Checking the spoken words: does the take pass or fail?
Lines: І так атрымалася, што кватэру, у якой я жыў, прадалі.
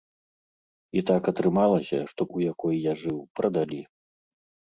fail